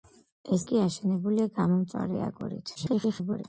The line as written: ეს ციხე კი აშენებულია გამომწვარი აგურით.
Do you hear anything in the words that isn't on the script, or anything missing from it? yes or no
yes